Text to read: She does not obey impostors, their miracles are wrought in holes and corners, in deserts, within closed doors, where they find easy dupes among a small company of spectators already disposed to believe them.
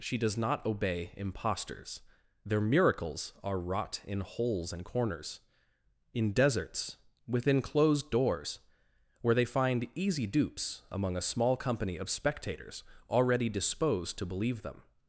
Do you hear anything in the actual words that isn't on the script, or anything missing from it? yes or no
no